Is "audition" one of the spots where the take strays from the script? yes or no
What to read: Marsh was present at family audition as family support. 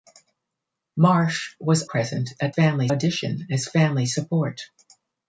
no